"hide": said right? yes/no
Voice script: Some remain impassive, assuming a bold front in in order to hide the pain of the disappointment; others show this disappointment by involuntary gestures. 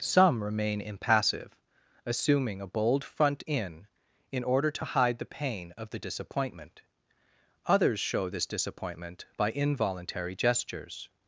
yes